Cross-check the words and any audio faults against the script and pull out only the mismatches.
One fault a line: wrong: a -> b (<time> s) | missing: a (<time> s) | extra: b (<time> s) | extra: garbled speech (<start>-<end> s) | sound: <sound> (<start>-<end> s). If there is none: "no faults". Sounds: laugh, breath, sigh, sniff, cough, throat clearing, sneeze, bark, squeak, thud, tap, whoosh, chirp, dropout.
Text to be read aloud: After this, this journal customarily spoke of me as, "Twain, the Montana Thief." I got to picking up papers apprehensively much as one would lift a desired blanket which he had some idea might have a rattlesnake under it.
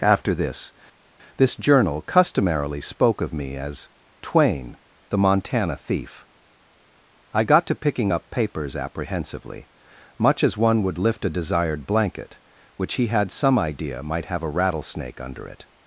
no faults